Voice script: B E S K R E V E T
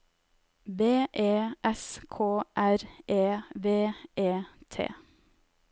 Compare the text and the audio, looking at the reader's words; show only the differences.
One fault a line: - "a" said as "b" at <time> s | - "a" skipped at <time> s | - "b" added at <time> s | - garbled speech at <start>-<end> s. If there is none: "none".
none